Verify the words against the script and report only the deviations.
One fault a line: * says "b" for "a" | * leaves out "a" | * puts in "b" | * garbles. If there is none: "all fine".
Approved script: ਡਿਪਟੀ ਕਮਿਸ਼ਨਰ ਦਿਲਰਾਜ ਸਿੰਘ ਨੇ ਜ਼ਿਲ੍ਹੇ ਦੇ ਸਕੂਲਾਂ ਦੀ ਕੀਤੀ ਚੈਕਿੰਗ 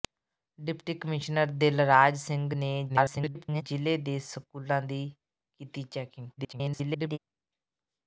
* garbles
* garbles